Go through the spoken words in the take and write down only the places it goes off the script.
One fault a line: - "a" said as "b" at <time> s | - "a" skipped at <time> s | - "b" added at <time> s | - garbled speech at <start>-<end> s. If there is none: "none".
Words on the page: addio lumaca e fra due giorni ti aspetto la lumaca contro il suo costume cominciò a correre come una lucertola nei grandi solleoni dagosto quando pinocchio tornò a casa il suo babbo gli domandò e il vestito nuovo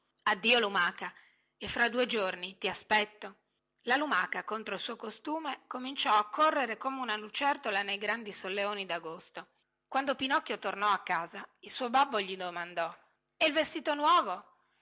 none